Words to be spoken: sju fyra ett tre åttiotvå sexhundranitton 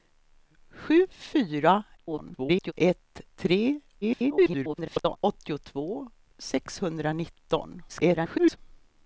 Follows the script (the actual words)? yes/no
no